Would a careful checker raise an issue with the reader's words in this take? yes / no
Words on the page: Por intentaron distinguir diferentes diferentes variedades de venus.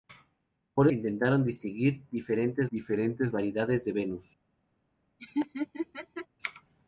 no